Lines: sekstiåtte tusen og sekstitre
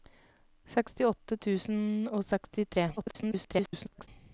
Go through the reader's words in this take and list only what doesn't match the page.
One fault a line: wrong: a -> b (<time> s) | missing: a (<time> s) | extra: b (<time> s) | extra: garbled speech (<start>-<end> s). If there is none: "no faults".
extra: garbled speech (3.0-4.1 s)